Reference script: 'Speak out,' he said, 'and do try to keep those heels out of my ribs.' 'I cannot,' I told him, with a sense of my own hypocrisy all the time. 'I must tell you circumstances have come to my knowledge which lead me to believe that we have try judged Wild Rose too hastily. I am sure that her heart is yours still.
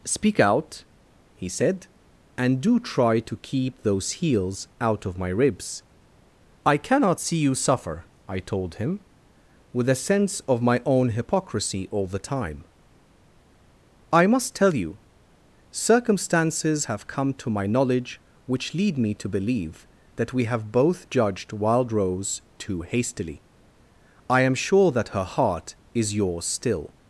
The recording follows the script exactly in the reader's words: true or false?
false